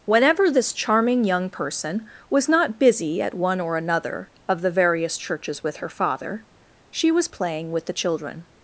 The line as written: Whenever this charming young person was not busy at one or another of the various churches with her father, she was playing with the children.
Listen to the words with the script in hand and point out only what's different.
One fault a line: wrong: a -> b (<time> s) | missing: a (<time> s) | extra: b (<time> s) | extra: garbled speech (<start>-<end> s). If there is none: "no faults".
no faults